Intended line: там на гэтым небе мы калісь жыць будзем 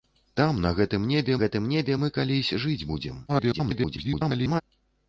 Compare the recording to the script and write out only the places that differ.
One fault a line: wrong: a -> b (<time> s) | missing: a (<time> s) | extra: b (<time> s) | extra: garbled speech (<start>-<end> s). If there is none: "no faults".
extra: гэтым небе (1.4 s)
extra: garbled speech (3.3-4.6 s)